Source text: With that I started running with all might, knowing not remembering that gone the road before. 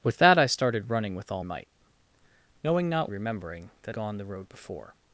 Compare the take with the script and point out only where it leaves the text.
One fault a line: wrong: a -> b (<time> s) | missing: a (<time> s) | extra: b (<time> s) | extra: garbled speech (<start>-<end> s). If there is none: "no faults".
no faults